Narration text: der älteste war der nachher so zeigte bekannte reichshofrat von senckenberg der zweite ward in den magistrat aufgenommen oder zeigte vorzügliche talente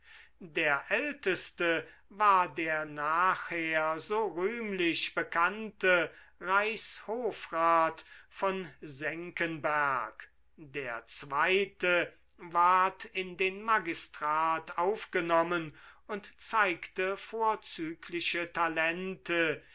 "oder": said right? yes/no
no